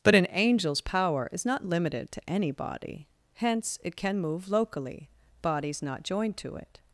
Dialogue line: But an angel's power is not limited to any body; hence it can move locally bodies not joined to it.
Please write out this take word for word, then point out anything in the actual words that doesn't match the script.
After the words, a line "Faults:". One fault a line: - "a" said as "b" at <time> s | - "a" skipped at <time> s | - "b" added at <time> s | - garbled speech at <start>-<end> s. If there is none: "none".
But an angel's power is not limited to any body; hence it can move locally bodies not joined to it.
Faults:
none